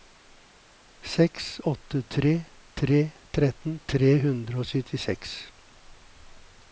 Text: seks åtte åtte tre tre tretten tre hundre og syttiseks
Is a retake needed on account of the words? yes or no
yes